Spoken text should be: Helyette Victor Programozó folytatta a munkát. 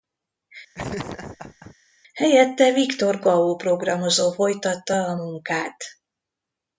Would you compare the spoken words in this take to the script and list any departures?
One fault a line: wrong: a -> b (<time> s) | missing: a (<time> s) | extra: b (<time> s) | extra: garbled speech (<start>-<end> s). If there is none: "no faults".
extra: Gao (3.2 s)